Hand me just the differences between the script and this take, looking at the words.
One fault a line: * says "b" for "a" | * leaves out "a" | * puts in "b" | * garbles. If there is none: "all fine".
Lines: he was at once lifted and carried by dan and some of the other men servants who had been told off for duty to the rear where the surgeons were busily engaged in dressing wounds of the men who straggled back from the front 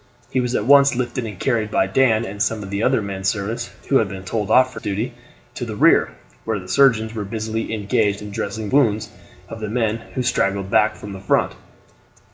all fine